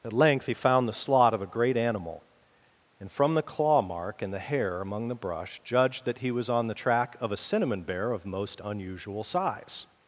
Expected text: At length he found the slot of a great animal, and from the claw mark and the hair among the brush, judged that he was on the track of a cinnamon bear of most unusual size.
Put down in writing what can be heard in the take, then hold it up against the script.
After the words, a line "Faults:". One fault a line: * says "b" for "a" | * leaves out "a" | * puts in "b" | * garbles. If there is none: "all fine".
At length he found the slot of a great animal, and from the claw mark and the hair among the brush, judged that he was on the track of a cinnamon bear of most unusual size.
Faults:
all fine